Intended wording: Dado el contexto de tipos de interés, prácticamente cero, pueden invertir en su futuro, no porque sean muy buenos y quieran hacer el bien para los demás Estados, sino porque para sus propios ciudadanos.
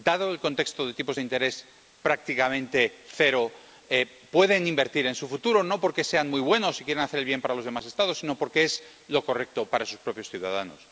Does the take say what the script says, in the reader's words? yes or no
no